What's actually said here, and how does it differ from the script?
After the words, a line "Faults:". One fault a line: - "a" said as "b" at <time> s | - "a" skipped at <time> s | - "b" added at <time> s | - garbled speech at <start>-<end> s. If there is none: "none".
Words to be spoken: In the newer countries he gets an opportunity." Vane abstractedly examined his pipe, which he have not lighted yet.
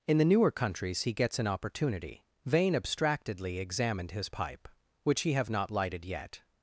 In the newer countries he gets an opportunity." Vane abstractedly examined his pipe, which he have not lighted yet.
Faults:
none